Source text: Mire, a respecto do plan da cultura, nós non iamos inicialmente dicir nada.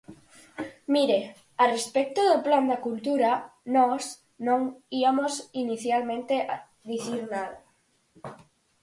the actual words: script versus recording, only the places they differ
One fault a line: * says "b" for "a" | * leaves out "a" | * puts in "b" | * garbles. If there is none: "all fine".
all fine